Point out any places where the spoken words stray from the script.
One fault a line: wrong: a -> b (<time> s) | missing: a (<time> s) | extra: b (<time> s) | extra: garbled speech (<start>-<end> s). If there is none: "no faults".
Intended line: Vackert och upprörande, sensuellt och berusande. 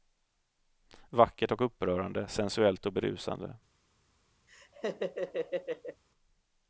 no faults